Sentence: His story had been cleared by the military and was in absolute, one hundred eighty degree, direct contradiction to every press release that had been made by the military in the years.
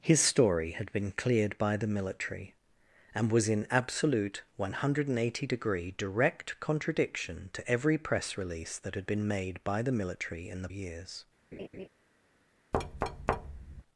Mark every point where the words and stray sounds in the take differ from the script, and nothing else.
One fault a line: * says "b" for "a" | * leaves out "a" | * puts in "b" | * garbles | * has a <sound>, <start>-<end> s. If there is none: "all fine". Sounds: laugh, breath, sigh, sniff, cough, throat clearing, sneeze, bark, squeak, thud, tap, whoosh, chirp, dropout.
* has a laugh, 11.5-11.9 s
* has a thud, 12.7-13.8 s